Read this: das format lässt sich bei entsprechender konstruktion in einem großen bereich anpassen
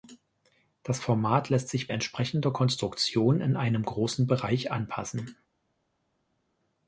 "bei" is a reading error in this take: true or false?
true